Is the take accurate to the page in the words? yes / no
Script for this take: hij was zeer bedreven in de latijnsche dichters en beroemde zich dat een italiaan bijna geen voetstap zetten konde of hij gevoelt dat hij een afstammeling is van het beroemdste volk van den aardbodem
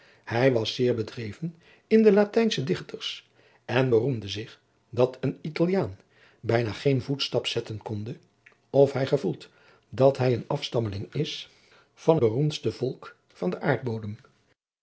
no